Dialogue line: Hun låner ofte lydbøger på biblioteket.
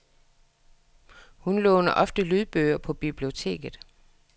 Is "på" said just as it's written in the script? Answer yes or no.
yes